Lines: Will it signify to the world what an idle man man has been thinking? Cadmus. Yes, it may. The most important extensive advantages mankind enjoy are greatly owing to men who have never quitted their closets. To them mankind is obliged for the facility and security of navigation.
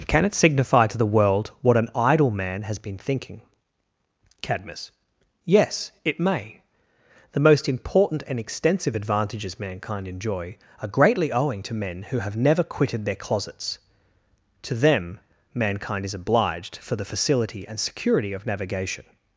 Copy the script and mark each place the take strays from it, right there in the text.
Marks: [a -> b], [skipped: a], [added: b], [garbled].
[Will -> Can] it signify to the world what an idle man [skipped: man] has been thinking? Cadmus. Yes, it may. The most important [added: and] extensive advantages mankind enjoy are greatly owing to men who have never quitted their closets. To them mankind is obliged for the facility and security of navigation.